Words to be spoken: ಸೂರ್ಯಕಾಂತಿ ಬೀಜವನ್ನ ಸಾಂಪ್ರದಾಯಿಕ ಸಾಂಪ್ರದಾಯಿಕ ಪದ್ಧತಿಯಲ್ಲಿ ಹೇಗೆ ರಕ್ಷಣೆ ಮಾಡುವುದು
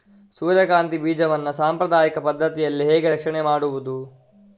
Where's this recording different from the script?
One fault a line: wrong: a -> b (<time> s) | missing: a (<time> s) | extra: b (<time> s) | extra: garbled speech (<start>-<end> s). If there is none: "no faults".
missing: ಸಾಂಪ್ರದಾಯಿಕ (2.2 s)